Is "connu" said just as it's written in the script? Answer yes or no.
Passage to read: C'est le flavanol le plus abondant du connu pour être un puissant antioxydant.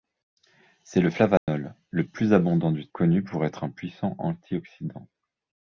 yes